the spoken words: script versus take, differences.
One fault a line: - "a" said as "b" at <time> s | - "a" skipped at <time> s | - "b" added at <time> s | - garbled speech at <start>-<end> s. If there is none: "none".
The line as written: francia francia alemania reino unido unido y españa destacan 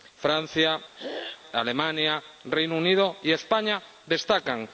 - "francia" skipped at 0.8 s
- "unido" skipped at 3.2 s